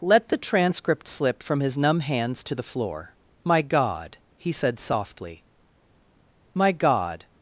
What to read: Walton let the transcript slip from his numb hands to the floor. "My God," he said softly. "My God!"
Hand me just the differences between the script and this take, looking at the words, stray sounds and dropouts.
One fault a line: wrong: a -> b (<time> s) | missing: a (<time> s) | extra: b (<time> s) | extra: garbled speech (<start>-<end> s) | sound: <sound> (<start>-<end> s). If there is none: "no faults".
missing: Walton (0.0 s)